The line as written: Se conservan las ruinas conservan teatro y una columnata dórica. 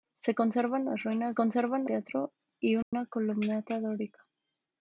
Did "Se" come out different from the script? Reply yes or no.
no